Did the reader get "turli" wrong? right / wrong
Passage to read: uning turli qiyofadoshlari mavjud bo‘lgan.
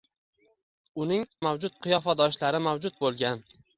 wrong